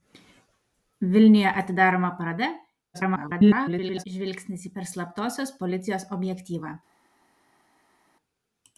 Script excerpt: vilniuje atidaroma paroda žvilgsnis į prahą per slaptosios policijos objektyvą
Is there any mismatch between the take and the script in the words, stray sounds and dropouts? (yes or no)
yes